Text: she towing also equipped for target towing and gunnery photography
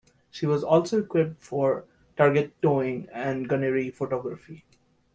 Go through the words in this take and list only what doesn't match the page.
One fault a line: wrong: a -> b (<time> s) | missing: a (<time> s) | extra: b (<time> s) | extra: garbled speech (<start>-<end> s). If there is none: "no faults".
wrong: towing -> was (0.5 s)